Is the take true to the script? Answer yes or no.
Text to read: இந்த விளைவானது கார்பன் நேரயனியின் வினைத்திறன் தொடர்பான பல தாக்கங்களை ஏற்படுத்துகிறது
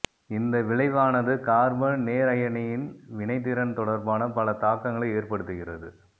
yes